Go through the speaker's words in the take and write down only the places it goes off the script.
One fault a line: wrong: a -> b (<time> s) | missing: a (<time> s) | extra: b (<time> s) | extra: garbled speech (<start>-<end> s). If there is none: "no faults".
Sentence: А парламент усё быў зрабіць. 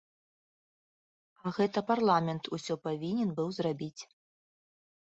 extra: гэта (1.6 s)
extra: павінен (2.9 s)